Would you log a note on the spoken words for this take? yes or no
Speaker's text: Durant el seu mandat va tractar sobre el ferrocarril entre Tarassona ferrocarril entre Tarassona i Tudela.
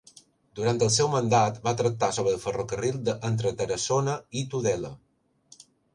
yes